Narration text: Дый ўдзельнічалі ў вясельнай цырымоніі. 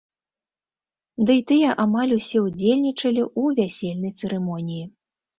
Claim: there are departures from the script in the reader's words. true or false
true